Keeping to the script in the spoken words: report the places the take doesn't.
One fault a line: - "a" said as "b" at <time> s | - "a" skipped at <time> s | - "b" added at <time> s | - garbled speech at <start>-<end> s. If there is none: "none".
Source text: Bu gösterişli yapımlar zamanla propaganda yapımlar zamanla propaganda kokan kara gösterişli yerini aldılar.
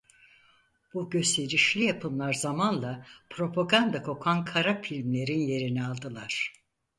- "yapımlar zamanla propaganda" skipped at 4.0 s
- "gösterişli" said as "filmlerin" at 4.8 s